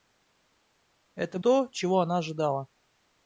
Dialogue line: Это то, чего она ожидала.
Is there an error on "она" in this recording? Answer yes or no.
no